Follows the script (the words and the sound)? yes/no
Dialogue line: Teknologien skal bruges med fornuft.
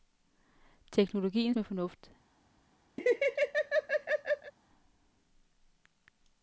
no